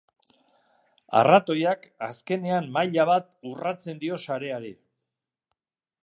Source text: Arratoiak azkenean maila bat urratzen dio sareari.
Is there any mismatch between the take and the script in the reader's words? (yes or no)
no